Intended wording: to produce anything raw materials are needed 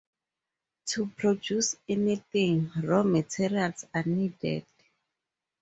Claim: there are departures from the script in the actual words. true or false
false